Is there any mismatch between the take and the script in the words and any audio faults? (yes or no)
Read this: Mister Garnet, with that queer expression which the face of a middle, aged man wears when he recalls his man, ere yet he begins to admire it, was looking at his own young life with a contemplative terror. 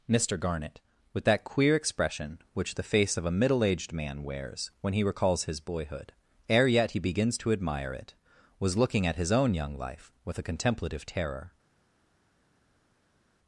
yes